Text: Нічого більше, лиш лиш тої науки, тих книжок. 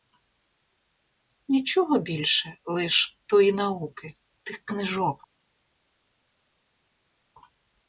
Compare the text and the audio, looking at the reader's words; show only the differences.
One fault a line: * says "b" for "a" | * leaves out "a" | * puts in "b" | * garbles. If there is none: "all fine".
* leaves out "лиш"